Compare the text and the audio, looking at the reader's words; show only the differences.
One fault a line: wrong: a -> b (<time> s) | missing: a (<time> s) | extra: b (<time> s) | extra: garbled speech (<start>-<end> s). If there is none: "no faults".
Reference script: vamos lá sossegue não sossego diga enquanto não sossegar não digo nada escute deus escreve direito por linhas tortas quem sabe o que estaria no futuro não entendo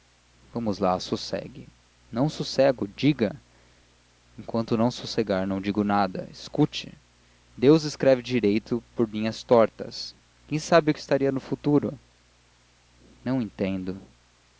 no faults